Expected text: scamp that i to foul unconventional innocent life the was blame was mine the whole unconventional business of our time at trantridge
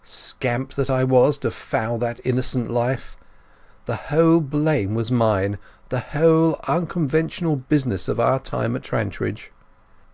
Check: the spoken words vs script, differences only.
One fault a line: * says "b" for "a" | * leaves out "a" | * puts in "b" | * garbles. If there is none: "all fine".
* puts in "was"
* says "that" for "unconventional"
* says "whole" for "was"